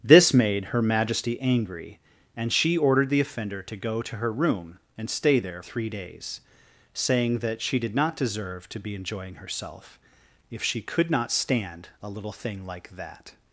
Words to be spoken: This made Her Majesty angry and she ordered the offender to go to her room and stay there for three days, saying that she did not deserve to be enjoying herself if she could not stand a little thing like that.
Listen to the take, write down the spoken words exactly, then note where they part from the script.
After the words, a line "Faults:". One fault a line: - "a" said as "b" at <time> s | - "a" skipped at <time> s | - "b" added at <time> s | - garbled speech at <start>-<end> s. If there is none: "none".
This made Her Majesty angry and she ordered the offender to go to her room and stay there three days, saying that she did not deserve to be enjoying herself if she could not stand a little thing like that.
Faults:
- "for" skipped at 5.6 s